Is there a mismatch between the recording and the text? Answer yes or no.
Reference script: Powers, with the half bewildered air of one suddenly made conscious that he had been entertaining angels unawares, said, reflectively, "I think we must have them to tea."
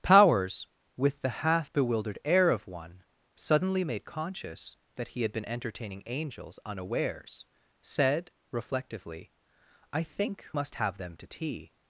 yes